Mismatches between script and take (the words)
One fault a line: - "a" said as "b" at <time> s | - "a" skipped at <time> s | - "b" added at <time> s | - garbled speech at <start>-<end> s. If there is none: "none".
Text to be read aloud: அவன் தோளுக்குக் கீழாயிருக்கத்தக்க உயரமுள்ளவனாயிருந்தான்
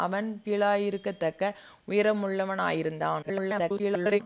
- "தோளுக்குக்" skipped at 0.3 s
- garbled speech at 3.2-4.2 s